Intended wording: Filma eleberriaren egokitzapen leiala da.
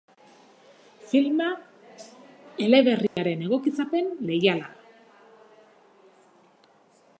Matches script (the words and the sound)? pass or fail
fail